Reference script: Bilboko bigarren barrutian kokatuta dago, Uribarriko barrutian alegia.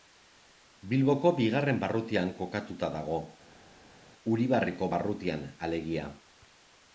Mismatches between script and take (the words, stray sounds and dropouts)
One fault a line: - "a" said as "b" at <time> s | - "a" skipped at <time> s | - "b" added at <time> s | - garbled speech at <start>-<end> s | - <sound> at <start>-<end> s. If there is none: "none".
none